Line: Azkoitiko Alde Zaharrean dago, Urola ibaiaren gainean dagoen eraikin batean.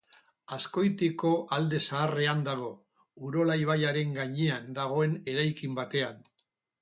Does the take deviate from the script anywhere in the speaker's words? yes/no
no